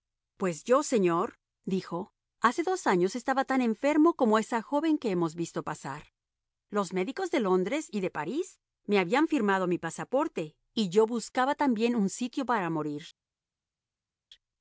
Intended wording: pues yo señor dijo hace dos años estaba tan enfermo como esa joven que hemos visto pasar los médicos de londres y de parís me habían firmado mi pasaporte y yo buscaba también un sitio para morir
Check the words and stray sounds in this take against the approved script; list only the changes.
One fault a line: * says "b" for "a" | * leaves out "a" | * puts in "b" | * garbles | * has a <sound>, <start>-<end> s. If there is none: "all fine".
all fine